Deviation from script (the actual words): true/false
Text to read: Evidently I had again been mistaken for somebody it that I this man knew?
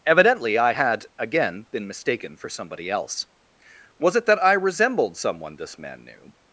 true